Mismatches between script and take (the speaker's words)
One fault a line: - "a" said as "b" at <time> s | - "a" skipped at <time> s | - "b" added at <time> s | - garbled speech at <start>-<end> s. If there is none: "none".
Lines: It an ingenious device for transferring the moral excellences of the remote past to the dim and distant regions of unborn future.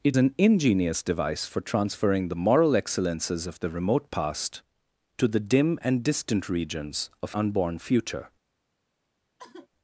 none